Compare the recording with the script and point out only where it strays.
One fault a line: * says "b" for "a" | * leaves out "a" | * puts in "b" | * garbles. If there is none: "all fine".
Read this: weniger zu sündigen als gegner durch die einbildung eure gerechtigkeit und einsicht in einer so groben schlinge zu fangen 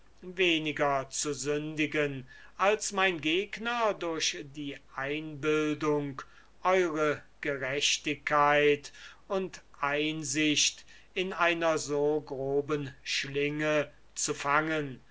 * puts in "mein"